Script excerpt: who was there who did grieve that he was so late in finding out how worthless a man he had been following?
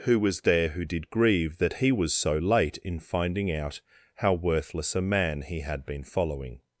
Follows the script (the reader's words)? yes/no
yes